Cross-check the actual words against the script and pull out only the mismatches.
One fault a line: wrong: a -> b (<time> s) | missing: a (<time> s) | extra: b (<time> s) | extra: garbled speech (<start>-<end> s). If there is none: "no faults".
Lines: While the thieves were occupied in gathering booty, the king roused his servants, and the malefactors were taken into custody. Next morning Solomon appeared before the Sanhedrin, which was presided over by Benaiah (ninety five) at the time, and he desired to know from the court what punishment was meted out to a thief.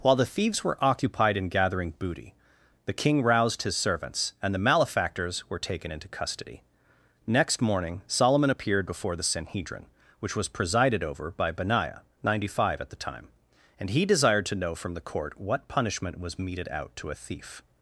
no faults